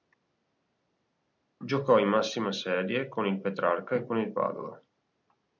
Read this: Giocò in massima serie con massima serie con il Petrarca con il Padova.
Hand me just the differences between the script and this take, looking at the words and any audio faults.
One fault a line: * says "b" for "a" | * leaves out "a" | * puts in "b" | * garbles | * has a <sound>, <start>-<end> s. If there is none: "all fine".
* leaves out "massima serie con"
* puts in "e"